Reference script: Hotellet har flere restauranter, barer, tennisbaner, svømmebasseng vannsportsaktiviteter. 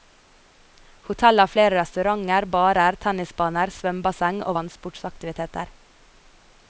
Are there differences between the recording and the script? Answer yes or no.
yes